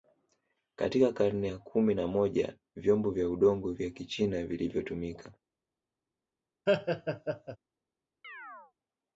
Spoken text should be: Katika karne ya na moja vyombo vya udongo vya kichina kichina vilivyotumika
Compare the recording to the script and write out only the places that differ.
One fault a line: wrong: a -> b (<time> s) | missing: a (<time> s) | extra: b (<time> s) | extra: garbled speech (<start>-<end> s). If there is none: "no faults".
extra: kumi (1.6 s)
missing: kichina (4.4 s)